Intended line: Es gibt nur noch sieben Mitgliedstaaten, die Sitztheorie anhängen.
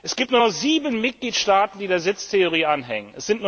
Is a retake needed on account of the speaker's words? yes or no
yes